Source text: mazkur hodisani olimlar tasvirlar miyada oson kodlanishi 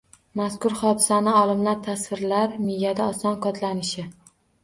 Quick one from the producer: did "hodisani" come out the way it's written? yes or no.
yes